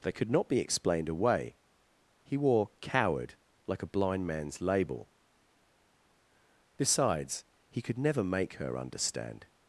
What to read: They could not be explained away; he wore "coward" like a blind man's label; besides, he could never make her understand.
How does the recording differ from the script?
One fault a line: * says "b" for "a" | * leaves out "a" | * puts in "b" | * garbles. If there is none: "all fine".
all fine